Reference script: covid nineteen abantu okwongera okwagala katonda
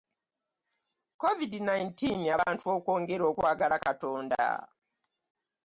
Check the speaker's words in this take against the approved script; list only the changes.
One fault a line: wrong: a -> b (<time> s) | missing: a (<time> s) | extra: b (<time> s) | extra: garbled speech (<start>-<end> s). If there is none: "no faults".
no faults